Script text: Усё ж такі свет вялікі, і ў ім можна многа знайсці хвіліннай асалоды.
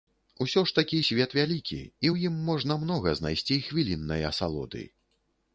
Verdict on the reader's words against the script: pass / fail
pass